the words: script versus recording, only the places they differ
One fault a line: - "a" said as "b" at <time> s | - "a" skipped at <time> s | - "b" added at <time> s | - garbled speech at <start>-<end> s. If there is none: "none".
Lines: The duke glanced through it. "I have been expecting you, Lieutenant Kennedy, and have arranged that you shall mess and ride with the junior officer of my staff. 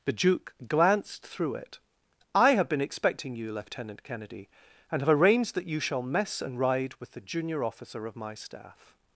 none